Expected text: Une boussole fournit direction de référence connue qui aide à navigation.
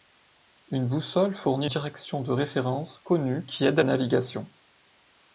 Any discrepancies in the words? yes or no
no